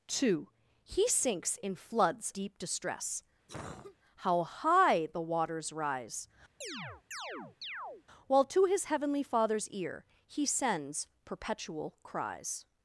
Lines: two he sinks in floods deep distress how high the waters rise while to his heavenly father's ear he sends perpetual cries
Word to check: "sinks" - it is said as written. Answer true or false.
true